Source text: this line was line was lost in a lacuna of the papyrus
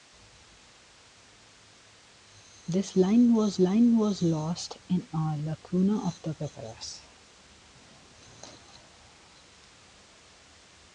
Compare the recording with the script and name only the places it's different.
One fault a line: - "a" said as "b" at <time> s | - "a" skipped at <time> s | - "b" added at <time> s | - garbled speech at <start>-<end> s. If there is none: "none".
none